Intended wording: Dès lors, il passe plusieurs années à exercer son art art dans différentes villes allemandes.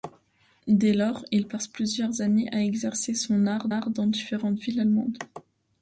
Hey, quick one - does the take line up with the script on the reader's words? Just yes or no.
yes